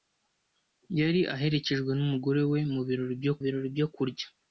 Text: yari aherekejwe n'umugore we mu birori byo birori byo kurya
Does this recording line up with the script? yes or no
yes